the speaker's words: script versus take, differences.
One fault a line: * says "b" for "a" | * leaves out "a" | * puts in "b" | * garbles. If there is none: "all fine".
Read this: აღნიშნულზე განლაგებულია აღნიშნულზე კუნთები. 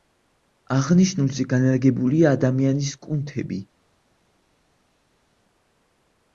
* says "ადამიანის" for "აღნიშნულზე"